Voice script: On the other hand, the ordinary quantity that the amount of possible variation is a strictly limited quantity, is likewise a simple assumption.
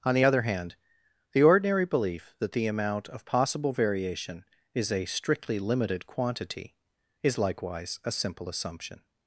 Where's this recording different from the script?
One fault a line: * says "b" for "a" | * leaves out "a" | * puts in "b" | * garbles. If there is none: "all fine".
* says "belief" for "quantity"